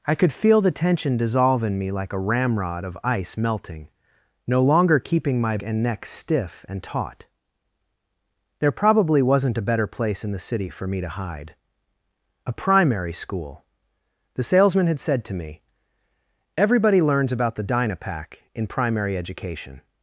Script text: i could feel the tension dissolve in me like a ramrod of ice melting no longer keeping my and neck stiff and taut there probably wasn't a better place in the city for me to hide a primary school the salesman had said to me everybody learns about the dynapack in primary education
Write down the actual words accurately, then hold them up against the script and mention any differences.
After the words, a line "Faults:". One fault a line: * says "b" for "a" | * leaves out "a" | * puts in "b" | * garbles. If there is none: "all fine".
i could feel the tension dissolve in me like a ramrod of ice melting no longer keeping my and neck stiff and taut there probably wasn't a better place in the city for me to hide a primary school the salesman had said to me everybody learns about the dynapack in primary education
Faults:
all fine